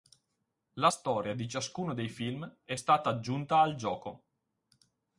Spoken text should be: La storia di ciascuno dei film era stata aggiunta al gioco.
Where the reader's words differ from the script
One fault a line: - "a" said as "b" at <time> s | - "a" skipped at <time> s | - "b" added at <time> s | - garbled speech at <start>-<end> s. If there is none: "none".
- "era" said as "è" at 2.6 s